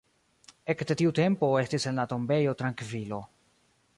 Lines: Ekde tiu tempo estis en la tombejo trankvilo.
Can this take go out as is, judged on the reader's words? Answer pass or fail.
pass